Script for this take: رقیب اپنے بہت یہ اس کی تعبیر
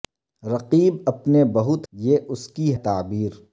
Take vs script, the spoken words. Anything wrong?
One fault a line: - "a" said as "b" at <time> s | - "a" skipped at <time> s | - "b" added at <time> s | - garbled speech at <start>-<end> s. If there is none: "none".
none